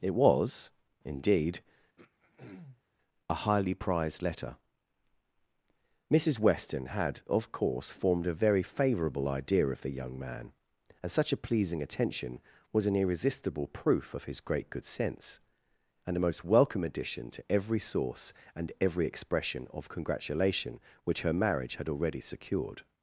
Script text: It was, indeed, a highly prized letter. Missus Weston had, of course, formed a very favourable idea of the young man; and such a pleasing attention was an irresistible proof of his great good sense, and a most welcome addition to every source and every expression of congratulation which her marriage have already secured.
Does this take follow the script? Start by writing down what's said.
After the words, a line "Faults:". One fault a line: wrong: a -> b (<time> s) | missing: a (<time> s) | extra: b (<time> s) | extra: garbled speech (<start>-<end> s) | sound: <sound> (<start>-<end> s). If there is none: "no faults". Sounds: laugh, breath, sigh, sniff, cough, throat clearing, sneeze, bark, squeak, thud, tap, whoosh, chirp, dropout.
It was, indeed, a highly prized letter. Missus Weston had, of course, formed a very favourable idea of the young man; and such a pleasing attention was an irresistible proof of his great good sense, and a most welcome addition to every source and every expression of congratulation which her marriage had already secured.
Faults:
sound: throat clearing (2.0-2.8 s)
wrong: have -> had (21.8 s)